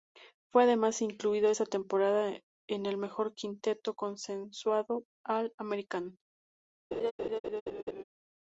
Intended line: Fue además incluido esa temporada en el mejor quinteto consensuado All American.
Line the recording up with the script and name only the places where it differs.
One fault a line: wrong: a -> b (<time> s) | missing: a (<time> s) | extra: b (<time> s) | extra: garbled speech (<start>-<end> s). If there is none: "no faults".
no faults